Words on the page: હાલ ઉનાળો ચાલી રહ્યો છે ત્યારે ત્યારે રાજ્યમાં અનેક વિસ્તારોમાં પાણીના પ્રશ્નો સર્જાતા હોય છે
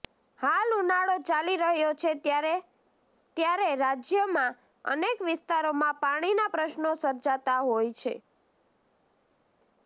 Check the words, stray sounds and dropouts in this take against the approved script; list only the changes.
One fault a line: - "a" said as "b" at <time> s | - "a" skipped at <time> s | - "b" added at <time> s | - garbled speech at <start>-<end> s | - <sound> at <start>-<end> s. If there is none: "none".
none